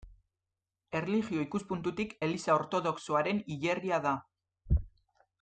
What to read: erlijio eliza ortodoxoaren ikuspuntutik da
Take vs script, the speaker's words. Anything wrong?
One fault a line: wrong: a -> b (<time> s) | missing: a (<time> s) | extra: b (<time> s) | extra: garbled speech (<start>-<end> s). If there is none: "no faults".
extra: ikuspuntutik (1.5 s)
wrong: ikuspuntutik -> hilerria (3.6 s)